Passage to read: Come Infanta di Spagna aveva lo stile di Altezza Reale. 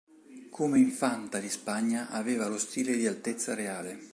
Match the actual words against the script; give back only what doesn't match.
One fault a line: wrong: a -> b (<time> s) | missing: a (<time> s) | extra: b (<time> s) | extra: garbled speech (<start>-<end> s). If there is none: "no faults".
no faults